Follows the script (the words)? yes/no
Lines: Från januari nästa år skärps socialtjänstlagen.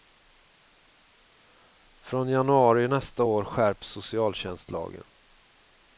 yes